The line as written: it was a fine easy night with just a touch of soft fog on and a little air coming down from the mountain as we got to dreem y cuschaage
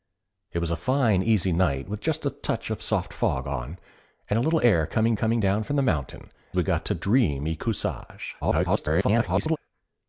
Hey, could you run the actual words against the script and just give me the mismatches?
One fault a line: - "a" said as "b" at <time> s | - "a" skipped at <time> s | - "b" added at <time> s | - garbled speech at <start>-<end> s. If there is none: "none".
- "coming" added at 5.1 s
- "as" skipped at 6.3 s
- garbled speech at 8.4-9.6 s